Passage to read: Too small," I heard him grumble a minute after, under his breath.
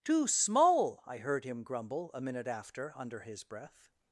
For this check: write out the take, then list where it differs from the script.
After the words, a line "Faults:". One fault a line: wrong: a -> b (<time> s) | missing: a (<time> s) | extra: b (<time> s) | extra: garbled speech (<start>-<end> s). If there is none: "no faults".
Too small," I heard him grumble a minute after, under his breath.
Faults:
no faults